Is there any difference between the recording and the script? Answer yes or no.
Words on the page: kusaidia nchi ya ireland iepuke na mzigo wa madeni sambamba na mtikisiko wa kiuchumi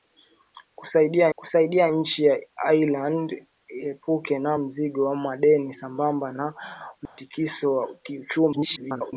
yes